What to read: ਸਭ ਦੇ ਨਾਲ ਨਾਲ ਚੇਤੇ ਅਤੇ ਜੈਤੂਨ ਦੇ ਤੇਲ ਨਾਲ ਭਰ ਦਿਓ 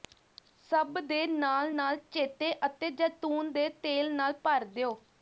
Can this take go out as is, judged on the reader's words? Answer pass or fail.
pass